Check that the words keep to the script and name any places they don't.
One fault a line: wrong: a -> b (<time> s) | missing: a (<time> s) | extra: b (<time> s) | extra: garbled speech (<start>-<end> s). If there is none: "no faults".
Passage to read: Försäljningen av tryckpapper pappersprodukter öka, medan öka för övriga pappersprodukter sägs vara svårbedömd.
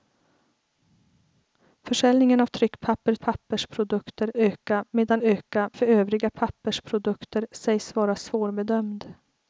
no faults